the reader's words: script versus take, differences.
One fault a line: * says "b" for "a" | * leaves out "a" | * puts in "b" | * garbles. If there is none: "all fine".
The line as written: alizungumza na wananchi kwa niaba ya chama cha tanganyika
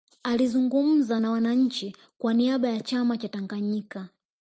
all fine